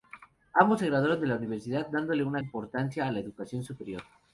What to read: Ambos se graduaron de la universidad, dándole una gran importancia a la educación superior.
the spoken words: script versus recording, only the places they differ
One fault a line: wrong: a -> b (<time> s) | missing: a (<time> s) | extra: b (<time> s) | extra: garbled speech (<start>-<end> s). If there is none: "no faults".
missing: gran (2.4 s)